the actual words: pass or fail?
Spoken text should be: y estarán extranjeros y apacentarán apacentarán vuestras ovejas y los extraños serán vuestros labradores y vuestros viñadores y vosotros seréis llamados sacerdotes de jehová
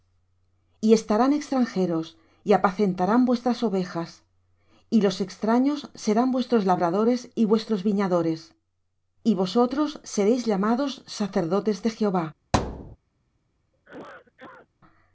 fail